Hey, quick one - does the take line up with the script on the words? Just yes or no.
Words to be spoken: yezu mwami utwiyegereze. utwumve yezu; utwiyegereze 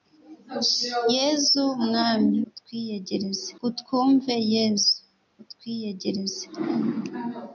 yes